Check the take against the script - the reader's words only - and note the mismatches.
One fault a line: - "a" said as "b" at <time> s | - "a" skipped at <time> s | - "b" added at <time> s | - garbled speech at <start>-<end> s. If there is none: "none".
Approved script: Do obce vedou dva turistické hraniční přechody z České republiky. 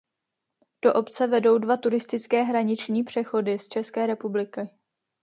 none